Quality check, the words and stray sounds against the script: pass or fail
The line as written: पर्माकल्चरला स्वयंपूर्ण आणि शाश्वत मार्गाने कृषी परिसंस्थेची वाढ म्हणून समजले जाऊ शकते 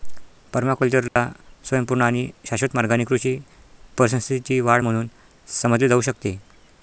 fail